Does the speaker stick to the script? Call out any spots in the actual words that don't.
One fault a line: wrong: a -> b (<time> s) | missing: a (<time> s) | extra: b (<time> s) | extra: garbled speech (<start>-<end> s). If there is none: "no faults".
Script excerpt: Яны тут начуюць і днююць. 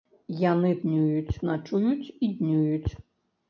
wrong: тут -> днююць (0.8 s)